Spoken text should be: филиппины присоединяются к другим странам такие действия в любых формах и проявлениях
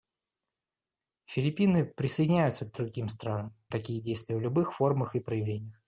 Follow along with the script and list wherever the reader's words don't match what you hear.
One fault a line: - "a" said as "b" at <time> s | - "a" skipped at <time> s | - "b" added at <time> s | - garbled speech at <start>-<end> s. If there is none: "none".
none